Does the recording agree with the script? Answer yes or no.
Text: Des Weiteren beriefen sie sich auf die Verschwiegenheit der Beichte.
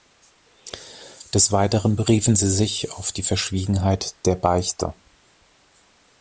yes